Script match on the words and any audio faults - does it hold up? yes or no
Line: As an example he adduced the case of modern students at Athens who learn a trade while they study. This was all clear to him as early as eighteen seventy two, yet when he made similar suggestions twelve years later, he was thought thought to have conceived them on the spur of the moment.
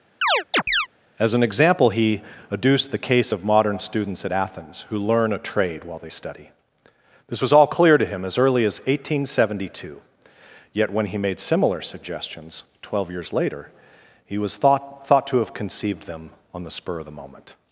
no